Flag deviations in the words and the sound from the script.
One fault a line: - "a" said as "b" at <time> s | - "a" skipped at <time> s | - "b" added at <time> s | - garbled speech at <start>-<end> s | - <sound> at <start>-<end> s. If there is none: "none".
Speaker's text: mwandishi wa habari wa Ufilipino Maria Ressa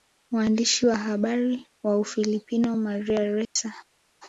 - dropout at 3.4-3.6 s